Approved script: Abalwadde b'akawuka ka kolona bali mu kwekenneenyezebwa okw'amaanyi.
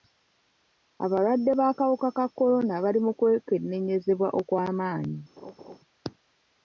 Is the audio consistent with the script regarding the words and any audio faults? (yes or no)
no